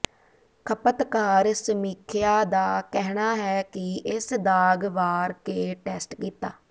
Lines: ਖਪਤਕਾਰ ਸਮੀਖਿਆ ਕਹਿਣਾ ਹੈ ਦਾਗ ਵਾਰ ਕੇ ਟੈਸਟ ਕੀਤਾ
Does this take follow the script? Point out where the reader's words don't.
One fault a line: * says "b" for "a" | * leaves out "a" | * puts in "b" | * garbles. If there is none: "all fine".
* puts in "ਦਾ"
* puts in "ਕਿ ਇਸ"